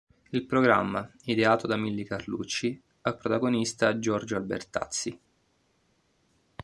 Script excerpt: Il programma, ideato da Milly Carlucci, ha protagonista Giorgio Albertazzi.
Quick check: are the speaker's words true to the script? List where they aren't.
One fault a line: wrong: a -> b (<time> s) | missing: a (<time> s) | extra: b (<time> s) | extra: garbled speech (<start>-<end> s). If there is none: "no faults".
no faults